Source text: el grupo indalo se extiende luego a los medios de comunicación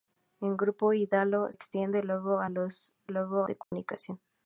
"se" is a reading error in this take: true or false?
true